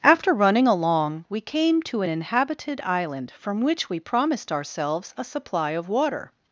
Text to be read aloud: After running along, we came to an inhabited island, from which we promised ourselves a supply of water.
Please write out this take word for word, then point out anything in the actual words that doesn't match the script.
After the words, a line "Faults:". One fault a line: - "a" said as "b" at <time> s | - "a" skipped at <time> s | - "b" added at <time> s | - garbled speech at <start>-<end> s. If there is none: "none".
After running along, we came to an inhabited island, from which we promised ourselves a supply of water.
Faults:
none